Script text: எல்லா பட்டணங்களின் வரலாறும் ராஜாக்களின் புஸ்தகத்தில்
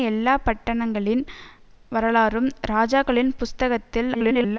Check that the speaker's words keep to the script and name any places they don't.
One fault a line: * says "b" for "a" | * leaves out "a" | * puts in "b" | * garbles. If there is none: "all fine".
* garbles